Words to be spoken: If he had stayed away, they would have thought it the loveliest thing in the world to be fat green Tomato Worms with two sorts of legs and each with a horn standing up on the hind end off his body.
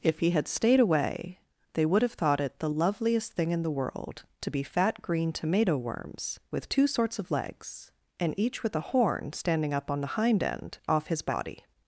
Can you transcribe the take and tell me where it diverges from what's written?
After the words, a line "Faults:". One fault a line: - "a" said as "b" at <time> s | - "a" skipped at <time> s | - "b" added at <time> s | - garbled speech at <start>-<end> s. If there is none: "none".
If he had stayed away, they would have thought it the loveliest thing in the world to be fat green Tomato Worms with two sorts of legs and each with a horn standing up on the hind end off his body.
Faults:
none